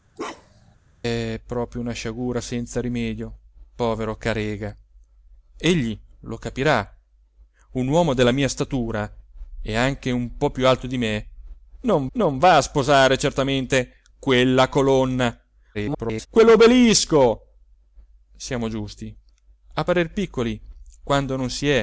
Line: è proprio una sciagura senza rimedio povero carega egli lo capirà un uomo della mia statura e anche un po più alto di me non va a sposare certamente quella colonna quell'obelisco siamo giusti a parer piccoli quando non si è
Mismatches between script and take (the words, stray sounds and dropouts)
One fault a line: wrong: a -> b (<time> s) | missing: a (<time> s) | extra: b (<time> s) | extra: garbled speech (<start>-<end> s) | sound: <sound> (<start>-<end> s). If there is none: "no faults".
sound: bark (0.2-0.8 s)
extra: non (12.1 s)
extra: garbled speech (15.7-16.3 s)